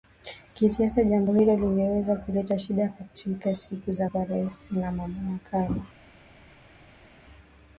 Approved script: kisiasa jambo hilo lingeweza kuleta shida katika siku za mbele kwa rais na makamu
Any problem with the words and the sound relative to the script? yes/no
yes